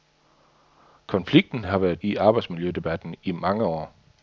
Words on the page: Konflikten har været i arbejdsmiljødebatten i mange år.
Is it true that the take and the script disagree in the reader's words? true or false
false